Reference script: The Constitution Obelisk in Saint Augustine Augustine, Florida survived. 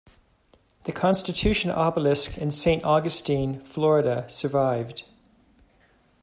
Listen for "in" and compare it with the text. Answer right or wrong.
right